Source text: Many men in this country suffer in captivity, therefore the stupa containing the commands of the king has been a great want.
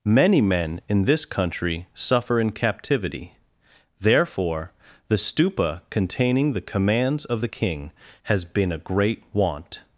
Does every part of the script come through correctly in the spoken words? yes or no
yes